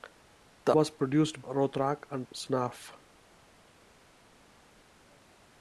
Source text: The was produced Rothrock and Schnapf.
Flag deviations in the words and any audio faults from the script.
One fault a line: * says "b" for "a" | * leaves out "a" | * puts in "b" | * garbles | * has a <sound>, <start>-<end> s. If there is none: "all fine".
all fine